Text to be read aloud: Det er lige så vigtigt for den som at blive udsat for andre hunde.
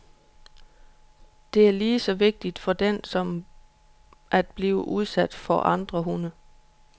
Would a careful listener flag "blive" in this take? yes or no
no